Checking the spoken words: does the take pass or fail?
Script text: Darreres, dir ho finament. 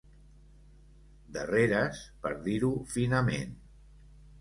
fail